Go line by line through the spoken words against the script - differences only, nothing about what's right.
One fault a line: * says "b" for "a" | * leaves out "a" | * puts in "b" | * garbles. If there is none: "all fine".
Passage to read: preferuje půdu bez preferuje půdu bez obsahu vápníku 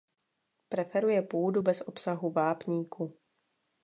* leaves out "preferuje půdu bez"